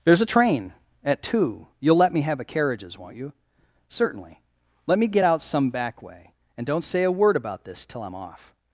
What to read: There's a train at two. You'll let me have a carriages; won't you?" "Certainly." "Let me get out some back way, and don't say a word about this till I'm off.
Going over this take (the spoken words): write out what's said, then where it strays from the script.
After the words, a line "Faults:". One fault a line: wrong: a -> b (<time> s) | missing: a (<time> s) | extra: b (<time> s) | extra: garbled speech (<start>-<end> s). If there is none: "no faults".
There's a train at two. You'll let me have a carriages; won't you?" "Certainly." "Let me get out some back way, and don't say a word about this till I'm off.
Faults:
no faults